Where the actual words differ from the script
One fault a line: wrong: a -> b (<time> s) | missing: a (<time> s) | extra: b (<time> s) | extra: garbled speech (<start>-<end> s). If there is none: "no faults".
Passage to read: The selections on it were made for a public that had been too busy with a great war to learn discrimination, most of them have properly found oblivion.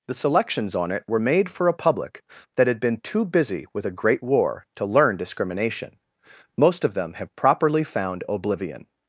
no faults